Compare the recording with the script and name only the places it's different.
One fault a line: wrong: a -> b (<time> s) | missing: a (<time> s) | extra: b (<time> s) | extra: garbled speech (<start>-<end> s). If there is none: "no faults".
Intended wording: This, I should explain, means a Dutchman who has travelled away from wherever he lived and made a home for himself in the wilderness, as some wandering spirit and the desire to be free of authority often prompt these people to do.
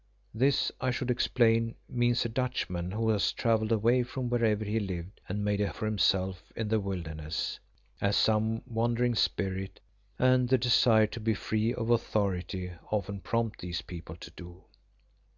missing: home (5.7 s)